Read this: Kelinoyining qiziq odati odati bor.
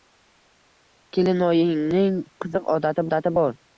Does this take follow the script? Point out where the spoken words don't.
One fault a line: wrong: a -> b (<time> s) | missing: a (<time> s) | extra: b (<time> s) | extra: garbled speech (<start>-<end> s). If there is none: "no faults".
no faults